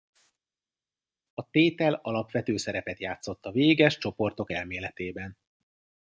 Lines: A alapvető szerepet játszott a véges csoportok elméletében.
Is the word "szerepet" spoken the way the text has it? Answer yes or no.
yes